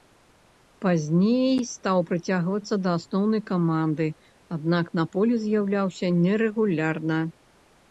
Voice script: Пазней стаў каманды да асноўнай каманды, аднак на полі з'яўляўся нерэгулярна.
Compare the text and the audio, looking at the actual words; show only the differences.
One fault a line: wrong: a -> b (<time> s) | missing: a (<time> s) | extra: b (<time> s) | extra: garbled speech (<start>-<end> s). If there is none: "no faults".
wrong: каманды -> прыцягвацца (2.1 s)